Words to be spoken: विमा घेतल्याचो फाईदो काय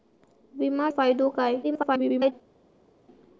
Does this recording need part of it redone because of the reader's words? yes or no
yes